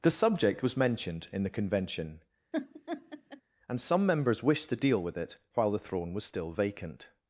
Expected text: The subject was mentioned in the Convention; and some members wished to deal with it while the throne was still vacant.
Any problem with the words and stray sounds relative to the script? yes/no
yes